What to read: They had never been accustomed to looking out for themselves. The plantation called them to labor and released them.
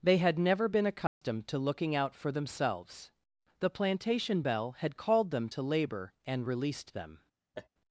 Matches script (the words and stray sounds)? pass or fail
fail